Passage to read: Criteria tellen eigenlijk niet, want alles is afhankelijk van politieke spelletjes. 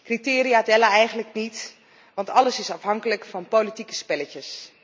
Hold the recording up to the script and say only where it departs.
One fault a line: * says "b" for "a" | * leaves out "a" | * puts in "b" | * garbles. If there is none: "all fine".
all fine